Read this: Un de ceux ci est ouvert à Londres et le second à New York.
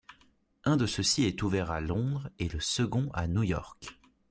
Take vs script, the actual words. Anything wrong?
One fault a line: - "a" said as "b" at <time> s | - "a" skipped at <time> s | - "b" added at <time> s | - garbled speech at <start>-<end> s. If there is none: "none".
none